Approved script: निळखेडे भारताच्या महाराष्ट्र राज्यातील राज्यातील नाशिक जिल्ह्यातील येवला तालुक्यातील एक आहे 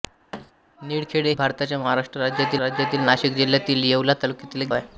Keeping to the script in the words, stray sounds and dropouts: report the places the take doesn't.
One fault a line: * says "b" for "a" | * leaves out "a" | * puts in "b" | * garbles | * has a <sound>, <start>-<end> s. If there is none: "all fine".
* has a thud, 0.3-0.5 s